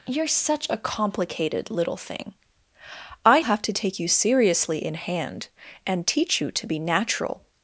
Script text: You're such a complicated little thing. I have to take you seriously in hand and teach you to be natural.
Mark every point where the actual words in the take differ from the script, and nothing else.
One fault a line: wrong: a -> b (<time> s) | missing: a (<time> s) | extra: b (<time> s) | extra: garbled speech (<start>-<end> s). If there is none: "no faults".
no faults